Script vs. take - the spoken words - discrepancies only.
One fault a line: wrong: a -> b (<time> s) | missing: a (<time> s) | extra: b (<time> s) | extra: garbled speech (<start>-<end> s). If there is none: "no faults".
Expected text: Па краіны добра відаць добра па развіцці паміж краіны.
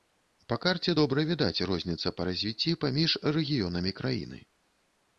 wrong: краіны -> карце (0.6 s)
wrong: добра -> розніца (1.7 s)
extra: рэгіёнамі (3.4 s)